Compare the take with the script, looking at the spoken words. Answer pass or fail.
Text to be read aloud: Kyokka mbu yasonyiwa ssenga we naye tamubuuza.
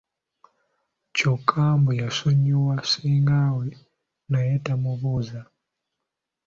pass